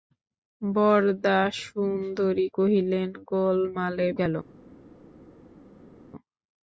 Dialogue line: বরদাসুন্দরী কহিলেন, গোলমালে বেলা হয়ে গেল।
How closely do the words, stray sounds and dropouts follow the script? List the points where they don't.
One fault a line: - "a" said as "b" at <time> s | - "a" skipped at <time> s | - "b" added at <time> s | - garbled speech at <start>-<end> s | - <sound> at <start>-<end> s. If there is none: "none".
- "বেলা হয়ে" skipped at 4.1 s